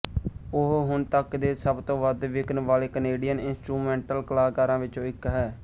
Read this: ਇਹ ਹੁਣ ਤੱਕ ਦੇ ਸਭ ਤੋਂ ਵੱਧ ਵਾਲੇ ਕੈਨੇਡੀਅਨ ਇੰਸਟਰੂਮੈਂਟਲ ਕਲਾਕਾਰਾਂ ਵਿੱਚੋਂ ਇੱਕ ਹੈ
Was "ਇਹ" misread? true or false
true